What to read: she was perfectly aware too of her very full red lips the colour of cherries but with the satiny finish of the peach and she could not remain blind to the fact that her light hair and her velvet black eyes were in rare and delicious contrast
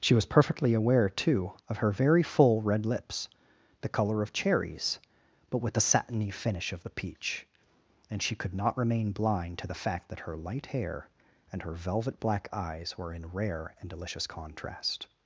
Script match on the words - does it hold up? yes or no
yes